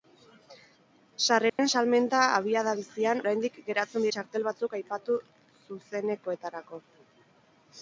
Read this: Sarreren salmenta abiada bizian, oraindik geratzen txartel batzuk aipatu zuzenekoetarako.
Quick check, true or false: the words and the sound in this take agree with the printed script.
false